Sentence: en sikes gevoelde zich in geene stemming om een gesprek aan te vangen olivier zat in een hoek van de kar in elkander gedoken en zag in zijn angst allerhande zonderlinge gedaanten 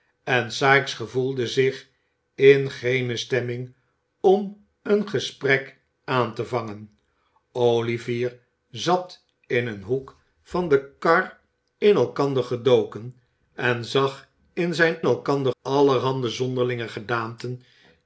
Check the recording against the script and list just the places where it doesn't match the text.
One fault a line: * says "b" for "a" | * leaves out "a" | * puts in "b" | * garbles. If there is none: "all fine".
* says "elkander" for "angst"